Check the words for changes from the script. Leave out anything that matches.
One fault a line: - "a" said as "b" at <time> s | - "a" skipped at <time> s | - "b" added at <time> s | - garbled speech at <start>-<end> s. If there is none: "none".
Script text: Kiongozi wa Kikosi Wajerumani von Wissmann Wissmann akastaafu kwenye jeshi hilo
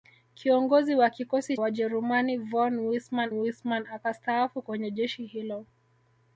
none